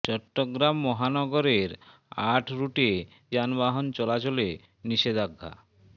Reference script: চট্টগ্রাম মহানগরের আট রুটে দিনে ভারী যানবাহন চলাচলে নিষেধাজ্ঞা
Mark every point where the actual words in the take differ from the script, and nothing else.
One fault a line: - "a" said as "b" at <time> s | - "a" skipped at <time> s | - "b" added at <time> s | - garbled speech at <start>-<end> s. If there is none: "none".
- "দিনে ভারী" skipped at 2.9 s